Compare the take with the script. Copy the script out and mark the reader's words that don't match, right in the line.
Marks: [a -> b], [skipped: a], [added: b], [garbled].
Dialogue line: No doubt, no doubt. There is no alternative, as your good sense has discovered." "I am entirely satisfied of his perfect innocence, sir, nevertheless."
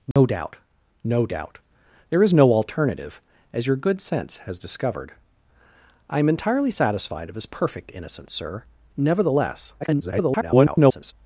No doubt, no doubt. There is no alternative, as your good sense has discovered." "I am entirely satisfied of his perfect innocence, sir, nevertheless." [garbled]